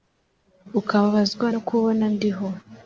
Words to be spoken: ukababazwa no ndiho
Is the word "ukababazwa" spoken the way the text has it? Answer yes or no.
yes